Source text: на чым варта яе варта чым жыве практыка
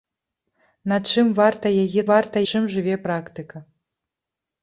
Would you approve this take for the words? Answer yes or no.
yes